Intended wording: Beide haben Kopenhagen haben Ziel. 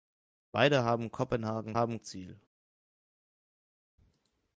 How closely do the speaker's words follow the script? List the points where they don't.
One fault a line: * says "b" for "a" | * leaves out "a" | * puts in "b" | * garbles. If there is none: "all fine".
all fine